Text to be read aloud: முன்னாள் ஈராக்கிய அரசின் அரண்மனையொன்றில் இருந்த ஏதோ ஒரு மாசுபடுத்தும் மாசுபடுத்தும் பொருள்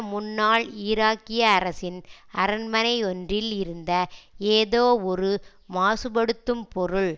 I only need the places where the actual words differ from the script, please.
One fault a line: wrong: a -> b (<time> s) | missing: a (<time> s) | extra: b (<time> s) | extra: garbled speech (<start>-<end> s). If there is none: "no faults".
missing: மாசுபடுத்தும் (6.6 s)